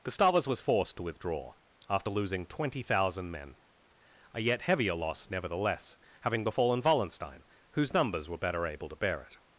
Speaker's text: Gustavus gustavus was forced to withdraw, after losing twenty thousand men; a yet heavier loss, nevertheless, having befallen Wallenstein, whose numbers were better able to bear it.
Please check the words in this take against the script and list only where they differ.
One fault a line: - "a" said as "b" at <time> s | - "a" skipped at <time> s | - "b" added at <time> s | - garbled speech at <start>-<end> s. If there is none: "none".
- "gustavus" skipped at 0.5 s